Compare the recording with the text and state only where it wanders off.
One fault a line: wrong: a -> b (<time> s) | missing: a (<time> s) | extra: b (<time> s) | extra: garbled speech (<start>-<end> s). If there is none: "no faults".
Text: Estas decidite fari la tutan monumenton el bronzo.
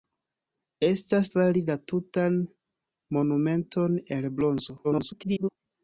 missing: decidite (1.3 s)
extra: garbled speech (4.8-5.5 s)